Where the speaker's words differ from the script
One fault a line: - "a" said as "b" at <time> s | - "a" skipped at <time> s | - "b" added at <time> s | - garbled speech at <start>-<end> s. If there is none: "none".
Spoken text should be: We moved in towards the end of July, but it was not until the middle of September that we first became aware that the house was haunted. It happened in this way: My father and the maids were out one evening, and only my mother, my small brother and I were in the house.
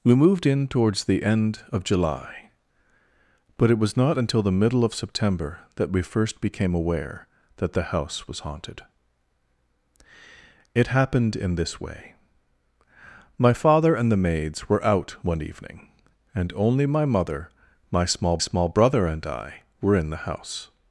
- "small" added at 18.4 s